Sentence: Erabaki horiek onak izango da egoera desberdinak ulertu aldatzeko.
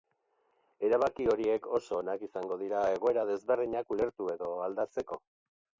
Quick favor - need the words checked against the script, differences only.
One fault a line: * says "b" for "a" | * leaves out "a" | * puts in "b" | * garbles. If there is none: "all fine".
* puts in "oso"
* says "dira" for "da"
* puts in "edo"